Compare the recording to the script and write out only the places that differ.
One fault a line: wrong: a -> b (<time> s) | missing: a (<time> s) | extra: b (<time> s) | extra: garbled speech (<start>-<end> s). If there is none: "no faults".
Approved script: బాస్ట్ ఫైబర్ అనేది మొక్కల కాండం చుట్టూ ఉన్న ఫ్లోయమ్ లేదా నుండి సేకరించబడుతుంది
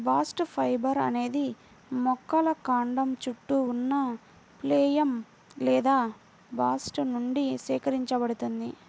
extra: బాస్ట్ (6.5 s)